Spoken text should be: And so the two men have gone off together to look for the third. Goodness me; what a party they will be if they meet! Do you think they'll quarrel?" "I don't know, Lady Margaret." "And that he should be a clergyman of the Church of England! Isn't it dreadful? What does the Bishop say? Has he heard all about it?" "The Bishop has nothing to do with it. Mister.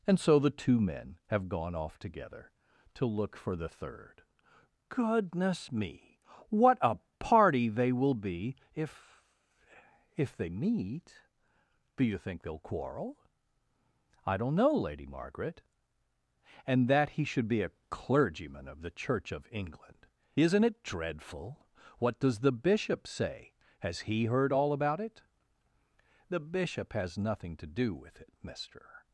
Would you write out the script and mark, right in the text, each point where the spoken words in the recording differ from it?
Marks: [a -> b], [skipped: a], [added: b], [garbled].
And so the two men have gone off together to look for the third. Goodness me; what a party they will be if [added: if] they meet! Do you think they'll quarrel?" "I don't know, Lady Margaret." "And that he should be a clergyman of the Church of England! Isn't it dreadful? What does the Bishop say? Has he heard all about it?" "The Bishop has nothing to do with it. Mister.